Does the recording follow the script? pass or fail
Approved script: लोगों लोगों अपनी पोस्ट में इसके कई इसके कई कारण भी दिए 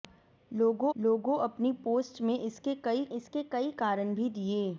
pass